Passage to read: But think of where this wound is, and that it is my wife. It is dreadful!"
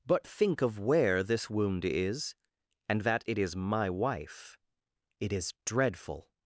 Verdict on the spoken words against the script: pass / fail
pass